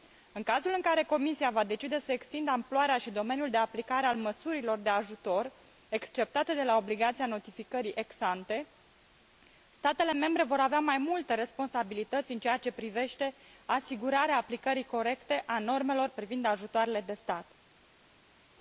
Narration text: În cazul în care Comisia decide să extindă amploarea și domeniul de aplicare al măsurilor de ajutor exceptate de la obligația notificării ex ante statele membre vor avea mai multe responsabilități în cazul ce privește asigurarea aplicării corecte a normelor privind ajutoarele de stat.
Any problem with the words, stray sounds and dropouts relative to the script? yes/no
yes